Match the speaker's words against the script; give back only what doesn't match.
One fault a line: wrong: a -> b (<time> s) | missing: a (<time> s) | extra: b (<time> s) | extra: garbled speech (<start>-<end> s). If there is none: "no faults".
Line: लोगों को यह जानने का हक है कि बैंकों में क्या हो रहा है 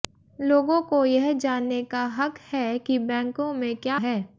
missing: हो रहा (4.0 s)